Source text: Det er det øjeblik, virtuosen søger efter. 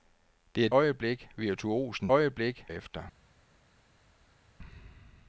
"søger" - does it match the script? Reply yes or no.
no